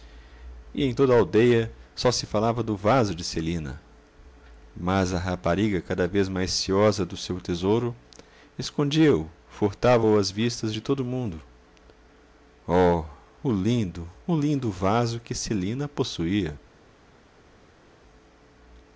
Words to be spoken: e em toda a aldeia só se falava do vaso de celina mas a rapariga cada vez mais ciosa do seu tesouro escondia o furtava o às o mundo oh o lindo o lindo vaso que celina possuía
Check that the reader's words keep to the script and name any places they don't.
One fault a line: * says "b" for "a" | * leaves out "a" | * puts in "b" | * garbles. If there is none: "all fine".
* puts in "vistas de todo"